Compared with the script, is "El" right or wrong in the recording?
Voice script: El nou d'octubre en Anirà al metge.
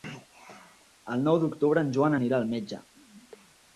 right